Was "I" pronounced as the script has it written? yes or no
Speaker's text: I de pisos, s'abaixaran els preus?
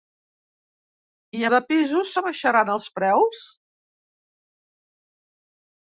yes